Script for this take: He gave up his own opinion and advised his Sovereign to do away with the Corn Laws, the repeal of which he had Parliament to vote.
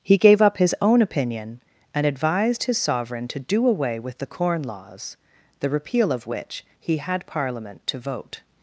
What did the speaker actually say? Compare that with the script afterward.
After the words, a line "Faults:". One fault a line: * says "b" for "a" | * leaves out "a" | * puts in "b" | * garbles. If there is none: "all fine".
He gave up his own opinion and advised his Sovereign to do away with the Corn Laws, the repeal of which he had Parliament to vote.
Faults:
all fine